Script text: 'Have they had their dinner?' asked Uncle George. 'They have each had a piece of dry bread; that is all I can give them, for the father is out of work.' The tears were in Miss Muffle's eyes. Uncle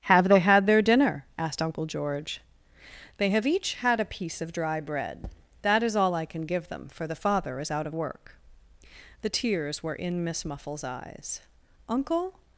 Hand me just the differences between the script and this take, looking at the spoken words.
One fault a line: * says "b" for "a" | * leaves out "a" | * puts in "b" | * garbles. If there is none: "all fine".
all fine